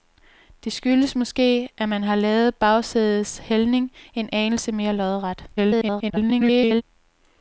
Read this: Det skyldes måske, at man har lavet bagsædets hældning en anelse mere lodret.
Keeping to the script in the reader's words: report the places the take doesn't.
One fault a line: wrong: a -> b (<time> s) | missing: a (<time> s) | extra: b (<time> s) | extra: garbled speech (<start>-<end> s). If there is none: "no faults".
extra: garbled speech (5.6-6.8 s)